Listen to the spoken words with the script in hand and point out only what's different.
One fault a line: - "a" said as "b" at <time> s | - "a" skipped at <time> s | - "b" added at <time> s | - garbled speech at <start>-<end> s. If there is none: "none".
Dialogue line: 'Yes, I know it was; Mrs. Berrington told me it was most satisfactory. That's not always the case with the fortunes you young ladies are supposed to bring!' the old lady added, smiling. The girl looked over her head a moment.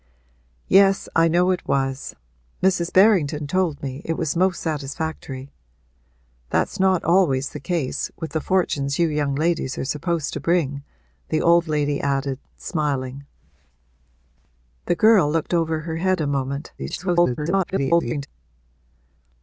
- garbled speech at 16.8-18.3 s